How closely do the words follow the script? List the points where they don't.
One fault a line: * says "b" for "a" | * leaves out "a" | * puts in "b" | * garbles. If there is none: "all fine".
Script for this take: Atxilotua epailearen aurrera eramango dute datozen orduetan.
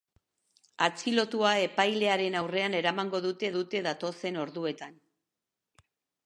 * puts in "dute"